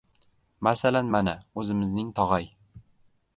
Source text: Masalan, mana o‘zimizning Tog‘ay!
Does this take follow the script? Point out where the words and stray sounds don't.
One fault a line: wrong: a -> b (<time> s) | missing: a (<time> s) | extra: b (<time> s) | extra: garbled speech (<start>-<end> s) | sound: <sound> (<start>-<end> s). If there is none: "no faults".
no faults